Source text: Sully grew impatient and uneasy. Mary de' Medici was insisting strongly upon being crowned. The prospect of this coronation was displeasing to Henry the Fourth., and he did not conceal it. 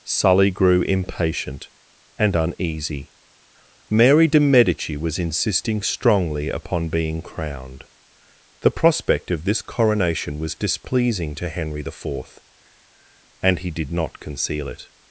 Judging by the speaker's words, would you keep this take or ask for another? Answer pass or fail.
pass